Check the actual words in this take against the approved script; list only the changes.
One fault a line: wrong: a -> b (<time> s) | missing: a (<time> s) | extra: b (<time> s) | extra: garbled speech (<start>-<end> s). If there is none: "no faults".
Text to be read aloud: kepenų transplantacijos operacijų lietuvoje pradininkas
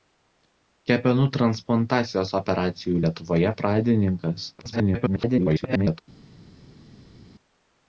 extra: garbled speech (4.6-6.0 s)